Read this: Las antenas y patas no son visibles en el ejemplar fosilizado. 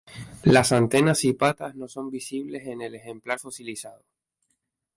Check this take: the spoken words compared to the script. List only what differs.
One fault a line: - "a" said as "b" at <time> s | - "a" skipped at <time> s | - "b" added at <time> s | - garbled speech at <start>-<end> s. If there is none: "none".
none